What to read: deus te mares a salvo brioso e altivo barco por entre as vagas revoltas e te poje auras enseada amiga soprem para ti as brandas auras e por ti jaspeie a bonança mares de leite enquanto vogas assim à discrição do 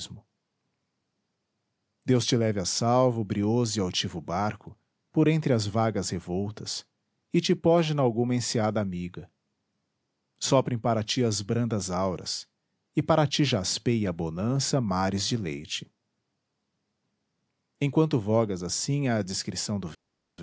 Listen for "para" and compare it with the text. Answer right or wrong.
right